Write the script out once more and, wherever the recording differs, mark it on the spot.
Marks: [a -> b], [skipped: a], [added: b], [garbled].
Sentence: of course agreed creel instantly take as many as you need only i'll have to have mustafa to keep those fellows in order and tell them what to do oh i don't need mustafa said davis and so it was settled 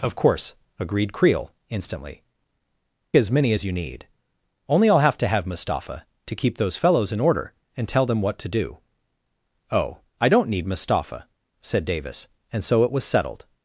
of course agreed creel instantly [skipped: take] as many as you need only i'll have to have mustafa to keep those fellows in order and tell them what to do oh i don't need mustafa said davis and so it was settled